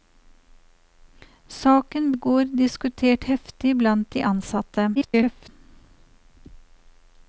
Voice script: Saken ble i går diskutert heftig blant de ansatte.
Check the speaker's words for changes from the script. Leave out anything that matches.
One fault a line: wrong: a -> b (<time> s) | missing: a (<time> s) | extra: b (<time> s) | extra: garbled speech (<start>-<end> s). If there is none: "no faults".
missing: ble (2.1 s)
extra: garbled speech (4.9-5.5 s)